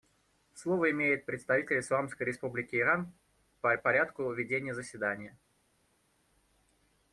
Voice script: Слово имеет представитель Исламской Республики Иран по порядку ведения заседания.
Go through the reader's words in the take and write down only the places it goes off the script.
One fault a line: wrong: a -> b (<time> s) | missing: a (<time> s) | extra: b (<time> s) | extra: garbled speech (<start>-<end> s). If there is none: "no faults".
no faults